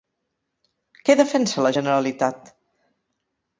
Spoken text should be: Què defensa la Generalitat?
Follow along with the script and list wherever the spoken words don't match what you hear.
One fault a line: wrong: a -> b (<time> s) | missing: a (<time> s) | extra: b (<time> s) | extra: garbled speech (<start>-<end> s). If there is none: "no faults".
no faults